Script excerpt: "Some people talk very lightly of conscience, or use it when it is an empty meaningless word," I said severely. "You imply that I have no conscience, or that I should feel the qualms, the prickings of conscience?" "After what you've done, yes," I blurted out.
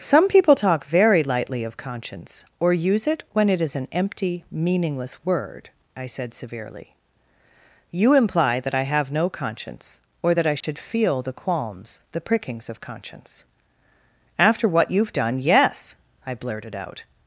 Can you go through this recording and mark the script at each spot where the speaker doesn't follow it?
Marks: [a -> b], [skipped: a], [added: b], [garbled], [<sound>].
"Some people talk very lightly of conscience, or use it when it is an empty meaningless word," I said severely. "You imply that I have no conscience, or that I should [dropout] feel the qualms, the prickings of conscience?" "After what you've done, yes," I blurted out.